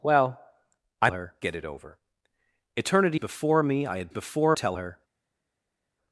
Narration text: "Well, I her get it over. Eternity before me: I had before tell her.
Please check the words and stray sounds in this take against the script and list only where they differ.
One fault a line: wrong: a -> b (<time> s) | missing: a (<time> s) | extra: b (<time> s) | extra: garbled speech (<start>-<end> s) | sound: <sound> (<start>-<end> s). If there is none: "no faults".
no faults